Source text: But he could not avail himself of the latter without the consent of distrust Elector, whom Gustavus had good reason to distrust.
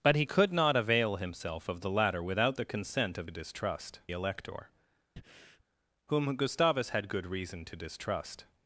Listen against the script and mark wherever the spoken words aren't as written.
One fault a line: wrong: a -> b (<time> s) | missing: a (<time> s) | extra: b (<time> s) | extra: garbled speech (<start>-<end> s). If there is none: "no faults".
no faults